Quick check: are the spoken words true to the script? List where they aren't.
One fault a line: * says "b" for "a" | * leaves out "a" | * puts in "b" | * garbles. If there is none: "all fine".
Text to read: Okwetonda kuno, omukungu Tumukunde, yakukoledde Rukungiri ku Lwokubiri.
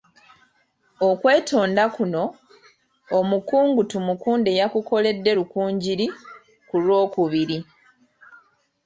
all fine